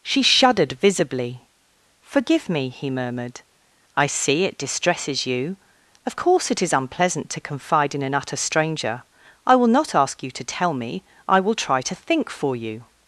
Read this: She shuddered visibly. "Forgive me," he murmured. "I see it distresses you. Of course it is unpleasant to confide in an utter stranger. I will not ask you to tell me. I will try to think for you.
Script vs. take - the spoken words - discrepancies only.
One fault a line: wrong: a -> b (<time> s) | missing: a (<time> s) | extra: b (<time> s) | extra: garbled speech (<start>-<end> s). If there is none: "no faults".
no faults